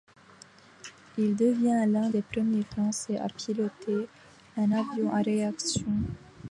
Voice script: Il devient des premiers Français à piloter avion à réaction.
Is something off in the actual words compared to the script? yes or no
yes